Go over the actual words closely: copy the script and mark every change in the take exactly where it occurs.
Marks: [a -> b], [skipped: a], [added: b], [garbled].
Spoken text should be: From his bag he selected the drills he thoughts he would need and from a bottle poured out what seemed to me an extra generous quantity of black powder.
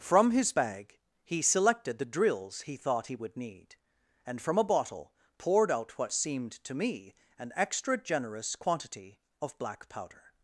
From his bag he selected the drills he [thoughts -> thought] he would need and from a bottle poured out what seemed to me an extra generous quantity of black powder.